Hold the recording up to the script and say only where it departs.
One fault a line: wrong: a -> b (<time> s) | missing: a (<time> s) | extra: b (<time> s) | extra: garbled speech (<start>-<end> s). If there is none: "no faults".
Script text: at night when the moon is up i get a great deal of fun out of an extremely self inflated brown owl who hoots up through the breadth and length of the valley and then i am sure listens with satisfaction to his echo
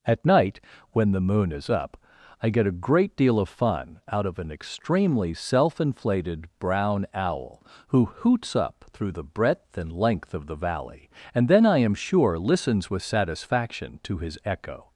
no faults